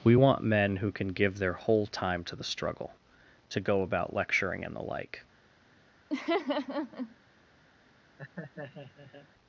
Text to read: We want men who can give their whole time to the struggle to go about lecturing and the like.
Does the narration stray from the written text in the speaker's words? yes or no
no